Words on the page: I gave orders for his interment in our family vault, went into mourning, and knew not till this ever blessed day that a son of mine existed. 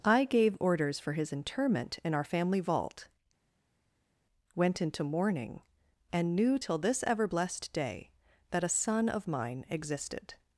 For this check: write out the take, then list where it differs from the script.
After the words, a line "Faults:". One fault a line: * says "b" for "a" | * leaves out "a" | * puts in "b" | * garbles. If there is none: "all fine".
I gave orders for his interment in our family vault, went into mourning, and knew till this ever blessed day that a son of mine existed.
Faults:
* leaves out "not"